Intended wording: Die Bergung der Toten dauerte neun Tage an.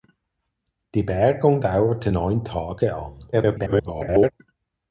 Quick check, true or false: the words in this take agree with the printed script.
false